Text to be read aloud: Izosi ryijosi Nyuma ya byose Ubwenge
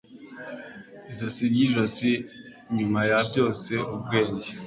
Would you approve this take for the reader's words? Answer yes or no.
yes